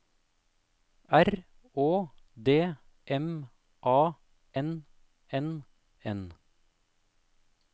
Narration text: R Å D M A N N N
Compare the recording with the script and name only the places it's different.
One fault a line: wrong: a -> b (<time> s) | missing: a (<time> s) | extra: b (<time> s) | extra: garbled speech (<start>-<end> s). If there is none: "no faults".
no faults